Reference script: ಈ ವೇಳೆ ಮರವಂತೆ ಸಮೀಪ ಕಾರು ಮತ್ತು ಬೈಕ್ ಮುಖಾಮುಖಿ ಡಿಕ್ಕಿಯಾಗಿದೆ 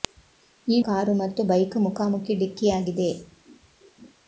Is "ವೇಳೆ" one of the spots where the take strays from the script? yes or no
yes